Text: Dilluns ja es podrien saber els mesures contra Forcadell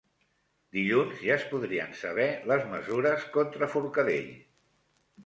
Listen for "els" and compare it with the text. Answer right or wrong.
wrong